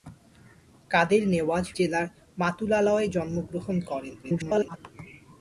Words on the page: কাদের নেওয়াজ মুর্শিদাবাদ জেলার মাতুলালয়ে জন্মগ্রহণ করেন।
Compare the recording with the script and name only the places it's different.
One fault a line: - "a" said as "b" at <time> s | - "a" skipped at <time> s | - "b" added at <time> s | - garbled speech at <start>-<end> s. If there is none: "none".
- "মুর্শিদাবাদ" skipped at 1.6 s
- garbled speech at 4.2-4.8 s